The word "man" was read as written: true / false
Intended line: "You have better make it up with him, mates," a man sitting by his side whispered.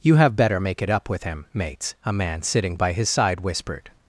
true